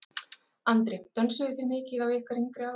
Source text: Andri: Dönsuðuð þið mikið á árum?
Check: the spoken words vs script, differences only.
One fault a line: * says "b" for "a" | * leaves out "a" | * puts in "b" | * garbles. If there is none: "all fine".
* puts in "ykkar yngri"